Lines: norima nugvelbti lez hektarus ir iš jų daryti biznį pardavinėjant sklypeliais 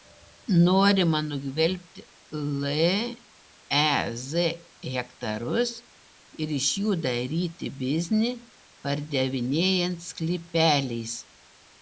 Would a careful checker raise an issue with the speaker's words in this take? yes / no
no